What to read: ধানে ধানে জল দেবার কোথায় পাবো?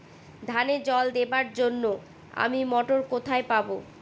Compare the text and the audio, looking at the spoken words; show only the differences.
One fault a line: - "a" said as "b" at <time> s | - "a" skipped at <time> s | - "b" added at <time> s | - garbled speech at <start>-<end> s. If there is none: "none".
- "ধানে" skipped at 0.8 s
- "জন্য আমি মটর" added at 1.5 s